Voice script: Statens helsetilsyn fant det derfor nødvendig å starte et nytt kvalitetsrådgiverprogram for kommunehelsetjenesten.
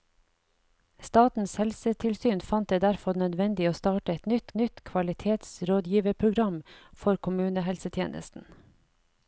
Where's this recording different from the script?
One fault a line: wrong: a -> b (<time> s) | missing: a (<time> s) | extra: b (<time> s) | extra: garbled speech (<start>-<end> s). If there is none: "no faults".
extra: nytt (4.6 s)